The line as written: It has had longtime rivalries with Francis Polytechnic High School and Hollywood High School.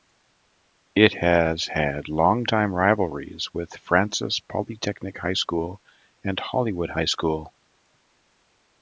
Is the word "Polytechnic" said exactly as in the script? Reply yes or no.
yes